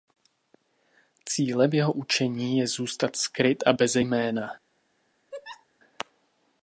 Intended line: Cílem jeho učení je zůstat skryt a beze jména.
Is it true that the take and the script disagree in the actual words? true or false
false